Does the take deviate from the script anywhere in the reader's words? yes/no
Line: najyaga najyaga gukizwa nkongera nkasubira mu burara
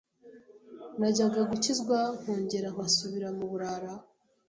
yes